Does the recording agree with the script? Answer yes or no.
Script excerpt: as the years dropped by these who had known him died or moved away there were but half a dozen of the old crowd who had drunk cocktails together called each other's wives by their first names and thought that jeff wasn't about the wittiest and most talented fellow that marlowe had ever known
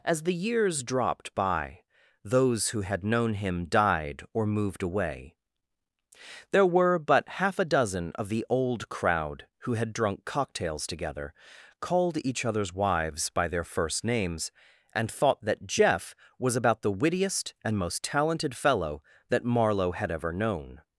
no